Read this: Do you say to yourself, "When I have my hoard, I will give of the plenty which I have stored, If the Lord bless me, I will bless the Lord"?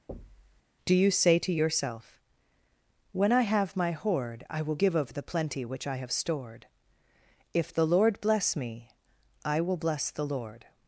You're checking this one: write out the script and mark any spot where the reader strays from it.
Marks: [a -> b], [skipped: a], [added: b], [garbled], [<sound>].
[thud] Do you say to yourself, "When I have my hoard, I will give of the plenty which I have stored, If the Lord bless me, I will bless the Lord"?